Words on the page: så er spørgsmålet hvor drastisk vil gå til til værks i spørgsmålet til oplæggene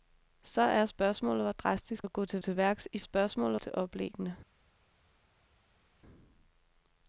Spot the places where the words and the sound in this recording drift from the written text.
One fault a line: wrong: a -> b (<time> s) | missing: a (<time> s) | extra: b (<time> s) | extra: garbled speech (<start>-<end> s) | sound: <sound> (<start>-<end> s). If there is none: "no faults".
no faults